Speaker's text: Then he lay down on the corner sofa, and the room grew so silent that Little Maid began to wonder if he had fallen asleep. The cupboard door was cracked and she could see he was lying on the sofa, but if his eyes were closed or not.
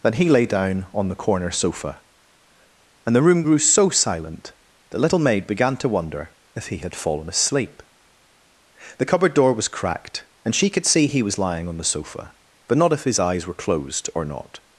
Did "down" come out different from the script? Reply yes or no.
no